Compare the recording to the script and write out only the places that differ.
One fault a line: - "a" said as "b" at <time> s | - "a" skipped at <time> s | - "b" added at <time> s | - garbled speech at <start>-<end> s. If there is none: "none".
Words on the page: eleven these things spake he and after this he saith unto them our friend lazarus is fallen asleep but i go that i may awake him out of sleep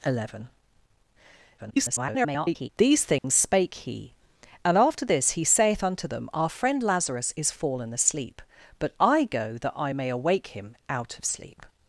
- garbled speech at 1.6-2.7 s